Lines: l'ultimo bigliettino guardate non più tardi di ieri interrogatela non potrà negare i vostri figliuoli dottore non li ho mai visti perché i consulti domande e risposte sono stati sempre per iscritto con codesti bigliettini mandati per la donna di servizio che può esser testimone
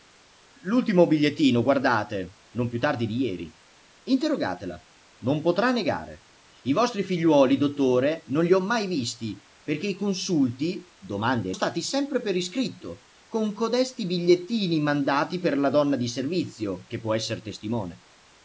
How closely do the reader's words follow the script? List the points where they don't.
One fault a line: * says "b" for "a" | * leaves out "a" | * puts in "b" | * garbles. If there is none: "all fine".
* leaves out "risposte sono"